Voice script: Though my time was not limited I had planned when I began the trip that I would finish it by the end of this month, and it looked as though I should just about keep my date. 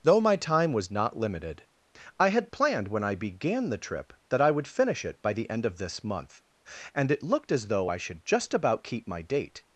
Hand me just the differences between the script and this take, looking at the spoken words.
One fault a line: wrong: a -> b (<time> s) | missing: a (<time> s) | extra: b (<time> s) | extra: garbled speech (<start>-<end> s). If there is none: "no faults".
no faults